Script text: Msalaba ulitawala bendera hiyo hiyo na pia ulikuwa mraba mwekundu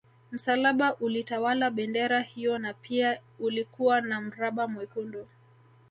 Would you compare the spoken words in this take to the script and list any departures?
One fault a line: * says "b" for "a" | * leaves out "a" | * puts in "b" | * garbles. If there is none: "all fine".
* leaves out "hiyo"
* puts in "na"